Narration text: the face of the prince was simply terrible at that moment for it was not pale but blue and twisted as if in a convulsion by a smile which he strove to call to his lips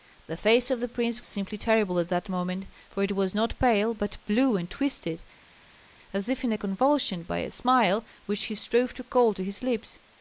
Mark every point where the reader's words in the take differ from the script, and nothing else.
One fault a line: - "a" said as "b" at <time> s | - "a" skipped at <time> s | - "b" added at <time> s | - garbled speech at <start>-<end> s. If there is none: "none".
- "was" skipped at 1.2 s